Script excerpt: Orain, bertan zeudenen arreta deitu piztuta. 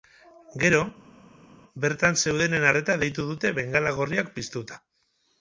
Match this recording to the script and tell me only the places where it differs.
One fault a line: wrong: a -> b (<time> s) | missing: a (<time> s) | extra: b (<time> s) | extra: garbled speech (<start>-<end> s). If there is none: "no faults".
wrong: Orain -> Gero (0.6 s)
extra: dute bengala gorriak (3.3 s)